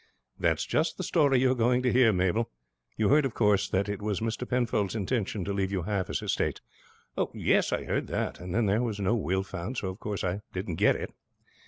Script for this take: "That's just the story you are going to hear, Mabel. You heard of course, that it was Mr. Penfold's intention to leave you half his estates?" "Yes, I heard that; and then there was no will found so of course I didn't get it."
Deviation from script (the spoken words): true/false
false